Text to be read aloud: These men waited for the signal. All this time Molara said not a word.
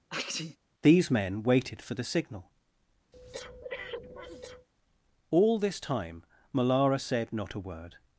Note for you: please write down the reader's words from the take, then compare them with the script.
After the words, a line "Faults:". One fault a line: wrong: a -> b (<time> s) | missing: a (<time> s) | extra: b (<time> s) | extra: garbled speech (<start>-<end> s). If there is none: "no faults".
These men waited for the signal. All this time Molara said not a word.
Faults:
no faults